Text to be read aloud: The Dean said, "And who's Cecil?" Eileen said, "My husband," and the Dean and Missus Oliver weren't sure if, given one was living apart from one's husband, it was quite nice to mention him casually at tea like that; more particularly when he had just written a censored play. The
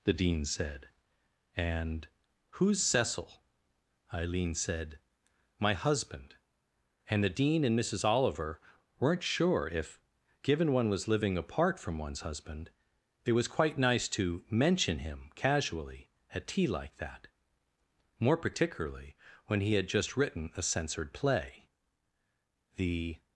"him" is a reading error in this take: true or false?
false